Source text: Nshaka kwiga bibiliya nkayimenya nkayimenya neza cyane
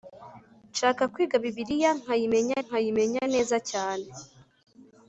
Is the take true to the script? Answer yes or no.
yes